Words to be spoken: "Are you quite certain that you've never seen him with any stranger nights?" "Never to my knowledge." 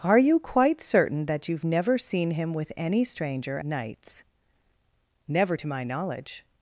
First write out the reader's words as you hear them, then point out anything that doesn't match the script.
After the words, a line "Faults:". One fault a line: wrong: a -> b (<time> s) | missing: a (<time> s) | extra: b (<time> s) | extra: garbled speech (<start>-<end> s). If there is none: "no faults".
"Are you quite certain that you've never seen him with any stranger nights?" "Never to my knowledge."
Faults:
no faults